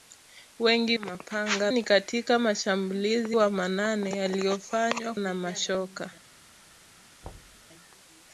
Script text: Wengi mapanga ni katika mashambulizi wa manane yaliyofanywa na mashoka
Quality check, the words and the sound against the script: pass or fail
fail